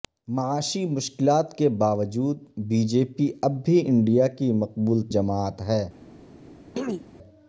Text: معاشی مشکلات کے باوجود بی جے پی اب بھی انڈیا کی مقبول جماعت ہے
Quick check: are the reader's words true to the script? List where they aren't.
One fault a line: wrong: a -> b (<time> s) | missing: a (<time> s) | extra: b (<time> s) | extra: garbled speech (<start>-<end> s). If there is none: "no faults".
no faults